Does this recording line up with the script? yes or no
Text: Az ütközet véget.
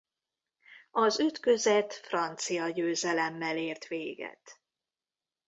no